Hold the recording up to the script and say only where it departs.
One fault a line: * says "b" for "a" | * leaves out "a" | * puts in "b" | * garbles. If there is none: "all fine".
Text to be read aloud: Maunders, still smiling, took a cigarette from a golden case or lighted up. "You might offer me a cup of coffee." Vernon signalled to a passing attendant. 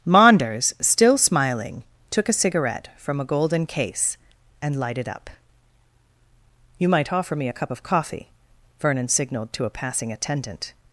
* says "and" for "or"